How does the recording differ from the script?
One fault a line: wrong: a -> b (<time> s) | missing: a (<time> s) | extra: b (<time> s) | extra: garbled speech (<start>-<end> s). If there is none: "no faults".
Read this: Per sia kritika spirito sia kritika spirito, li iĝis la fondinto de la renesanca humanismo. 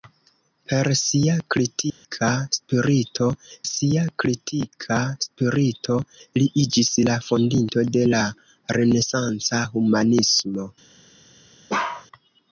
no faults